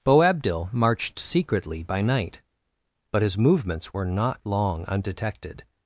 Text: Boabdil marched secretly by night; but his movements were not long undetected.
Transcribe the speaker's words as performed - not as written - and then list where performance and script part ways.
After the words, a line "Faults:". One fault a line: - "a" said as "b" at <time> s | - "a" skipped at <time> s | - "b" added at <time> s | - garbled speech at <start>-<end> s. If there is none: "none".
Boabdil marched secretly by night; but his movements were not long undetected.
Faults:
none